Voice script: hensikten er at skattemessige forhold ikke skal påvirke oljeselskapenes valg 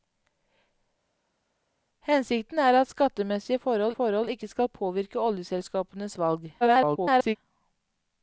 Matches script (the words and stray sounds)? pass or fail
fail